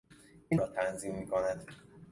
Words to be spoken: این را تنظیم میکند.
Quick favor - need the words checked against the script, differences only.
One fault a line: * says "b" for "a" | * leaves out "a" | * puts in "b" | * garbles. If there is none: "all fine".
all fine